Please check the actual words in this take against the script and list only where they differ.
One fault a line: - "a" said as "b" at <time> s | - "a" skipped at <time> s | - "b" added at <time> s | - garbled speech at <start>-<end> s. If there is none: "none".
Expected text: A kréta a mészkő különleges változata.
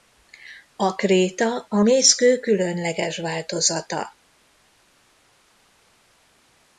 none